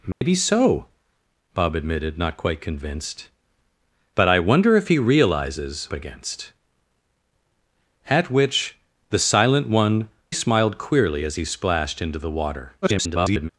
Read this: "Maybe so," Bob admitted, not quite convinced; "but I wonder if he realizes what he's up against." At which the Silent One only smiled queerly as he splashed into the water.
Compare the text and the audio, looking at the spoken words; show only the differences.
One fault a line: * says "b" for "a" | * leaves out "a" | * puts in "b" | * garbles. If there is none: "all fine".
* leaves out "what he's up"
* leaves out "only"
* garbles